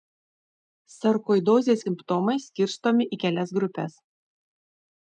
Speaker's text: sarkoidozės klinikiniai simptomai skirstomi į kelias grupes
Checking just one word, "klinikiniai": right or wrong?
wrong